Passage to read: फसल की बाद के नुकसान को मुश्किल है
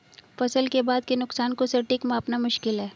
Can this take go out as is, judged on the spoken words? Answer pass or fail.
fail